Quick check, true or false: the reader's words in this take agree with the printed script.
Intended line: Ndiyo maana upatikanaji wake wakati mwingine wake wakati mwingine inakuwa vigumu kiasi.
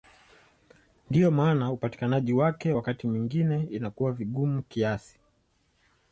false